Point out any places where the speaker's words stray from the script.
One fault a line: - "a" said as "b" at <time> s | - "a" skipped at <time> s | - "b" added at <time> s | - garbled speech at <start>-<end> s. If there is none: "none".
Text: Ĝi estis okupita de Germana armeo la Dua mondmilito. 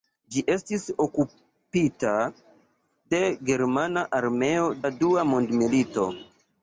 none